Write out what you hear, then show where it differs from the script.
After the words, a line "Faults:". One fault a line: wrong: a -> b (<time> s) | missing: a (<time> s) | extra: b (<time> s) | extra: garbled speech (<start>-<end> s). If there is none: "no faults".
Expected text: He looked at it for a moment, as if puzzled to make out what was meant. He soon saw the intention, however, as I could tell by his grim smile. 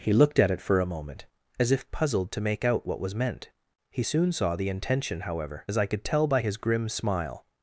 He looked at it for a moment, as if puzzled to make out what was meant. He soon saw the intention, however, as I could tell by his grim smile.
Faults:
no faults